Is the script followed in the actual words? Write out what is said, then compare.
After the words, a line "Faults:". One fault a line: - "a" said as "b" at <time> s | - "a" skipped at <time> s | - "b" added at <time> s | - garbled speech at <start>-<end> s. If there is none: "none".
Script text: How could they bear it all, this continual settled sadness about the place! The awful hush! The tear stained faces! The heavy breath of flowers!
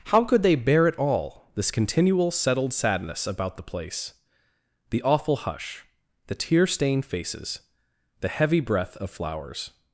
How could they bear it all, this continual settled sadness about the place! The awful hush! The tear stained faces! The heavy breath of flowers!
Faults:
none